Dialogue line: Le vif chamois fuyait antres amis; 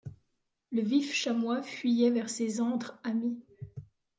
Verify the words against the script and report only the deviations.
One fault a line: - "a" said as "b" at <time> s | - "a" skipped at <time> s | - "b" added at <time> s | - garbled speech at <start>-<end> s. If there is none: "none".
- "vers ses" added at 2.1 s